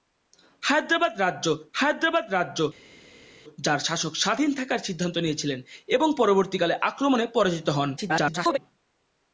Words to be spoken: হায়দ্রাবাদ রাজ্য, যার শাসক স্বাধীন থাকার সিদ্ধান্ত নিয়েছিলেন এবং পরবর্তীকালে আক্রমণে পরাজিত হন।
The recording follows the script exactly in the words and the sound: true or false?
false